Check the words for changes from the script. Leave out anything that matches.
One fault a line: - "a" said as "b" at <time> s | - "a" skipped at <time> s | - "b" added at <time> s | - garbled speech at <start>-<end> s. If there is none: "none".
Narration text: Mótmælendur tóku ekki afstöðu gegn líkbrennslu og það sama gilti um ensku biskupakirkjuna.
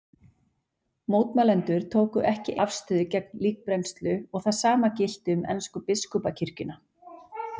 none